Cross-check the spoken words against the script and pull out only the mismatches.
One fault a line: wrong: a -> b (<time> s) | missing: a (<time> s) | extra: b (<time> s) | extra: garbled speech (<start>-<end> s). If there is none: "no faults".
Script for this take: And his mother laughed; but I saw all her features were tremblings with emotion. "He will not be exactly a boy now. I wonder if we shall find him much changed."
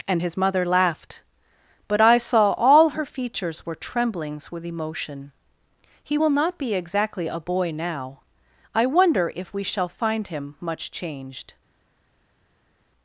no faults